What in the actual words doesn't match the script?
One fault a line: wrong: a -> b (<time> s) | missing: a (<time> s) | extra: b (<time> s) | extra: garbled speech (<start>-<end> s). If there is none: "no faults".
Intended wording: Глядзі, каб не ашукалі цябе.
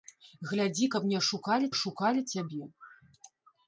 extra: ашукалі (1.7 s)